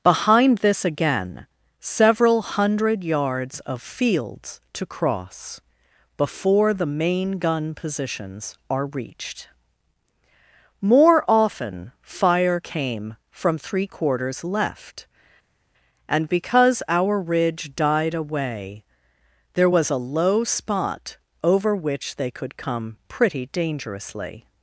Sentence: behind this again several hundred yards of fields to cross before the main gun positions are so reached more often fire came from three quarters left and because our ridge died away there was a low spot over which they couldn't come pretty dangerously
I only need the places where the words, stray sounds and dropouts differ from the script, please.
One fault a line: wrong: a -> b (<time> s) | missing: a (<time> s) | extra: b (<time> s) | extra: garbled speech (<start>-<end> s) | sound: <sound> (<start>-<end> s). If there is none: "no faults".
missing: so (8.9 s)
wrong: couldn't -> could (22.3 s)